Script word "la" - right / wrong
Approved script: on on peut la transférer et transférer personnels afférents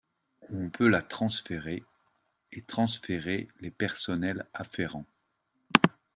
right